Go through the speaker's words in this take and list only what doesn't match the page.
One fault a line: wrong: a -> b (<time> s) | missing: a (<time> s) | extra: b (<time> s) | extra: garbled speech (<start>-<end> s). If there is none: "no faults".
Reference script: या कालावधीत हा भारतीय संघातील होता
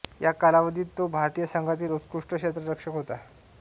wrong: हा -> तो (1.0 s)
extra: उत्कृष्ट क्षेत्ररक्षक (1.9 s)